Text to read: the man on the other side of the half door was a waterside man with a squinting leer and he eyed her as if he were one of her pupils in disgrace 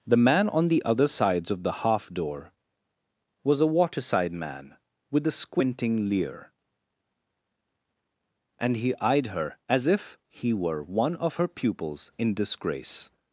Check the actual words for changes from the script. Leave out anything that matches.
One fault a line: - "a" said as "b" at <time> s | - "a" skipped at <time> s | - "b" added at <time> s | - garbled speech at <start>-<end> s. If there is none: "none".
- "side" said as "sides" at 1.1 s